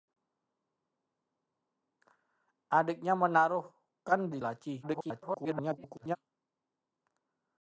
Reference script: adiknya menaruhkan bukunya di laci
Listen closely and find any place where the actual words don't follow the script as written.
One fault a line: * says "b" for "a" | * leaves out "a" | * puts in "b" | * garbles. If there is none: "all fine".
* leaves out "bukunya"
* garbles